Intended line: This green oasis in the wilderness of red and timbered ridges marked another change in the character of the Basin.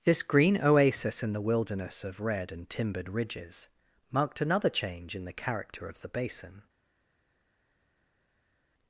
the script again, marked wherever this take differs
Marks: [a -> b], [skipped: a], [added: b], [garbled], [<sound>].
This green oasis in the wilderness of red and timbered ridges marked another change in the character of the Basin.